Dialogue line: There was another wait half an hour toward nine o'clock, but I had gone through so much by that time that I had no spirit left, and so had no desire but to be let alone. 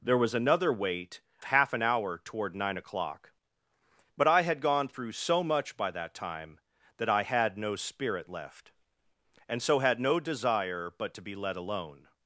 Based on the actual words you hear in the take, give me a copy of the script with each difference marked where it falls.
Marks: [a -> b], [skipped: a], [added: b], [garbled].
There was another wait half an hour toward nine o'clock, but I had gone through so much by that time that I had no spirit left, and so had no desire but to be let alone.